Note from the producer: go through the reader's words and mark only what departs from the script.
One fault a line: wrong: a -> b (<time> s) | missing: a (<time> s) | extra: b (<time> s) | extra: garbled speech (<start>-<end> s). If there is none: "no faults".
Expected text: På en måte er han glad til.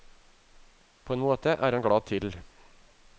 no faults